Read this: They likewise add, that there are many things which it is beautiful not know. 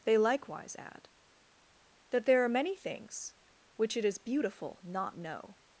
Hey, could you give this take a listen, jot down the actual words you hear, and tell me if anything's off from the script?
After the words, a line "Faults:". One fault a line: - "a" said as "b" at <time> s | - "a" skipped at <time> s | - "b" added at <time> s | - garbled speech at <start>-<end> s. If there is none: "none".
They likewise add, that there are many things which it is beautiful not know.
Faults:
none